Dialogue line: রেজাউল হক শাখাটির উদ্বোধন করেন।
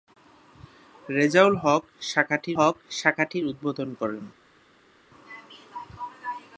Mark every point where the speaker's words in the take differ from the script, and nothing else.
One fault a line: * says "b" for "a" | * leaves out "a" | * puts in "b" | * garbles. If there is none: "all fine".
* puts in "হক শাখাটির"